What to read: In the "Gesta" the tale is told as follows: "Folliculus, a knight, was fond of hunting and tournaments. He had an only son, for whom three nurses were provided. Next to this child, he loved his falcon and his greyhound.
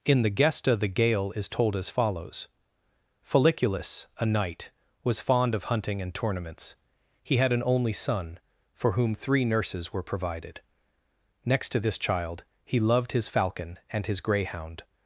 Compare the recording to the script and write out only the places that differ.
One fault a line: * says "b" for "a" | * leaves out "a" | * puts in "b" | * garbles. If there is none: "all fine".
* says "gale" for "tale"